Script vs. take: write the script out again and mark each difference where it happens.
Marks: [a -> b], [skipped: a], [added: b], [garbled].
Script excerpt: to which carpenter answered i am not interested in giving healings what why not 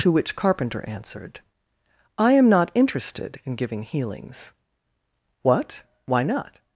to which carpenter answered i am not interested in giving healings what why not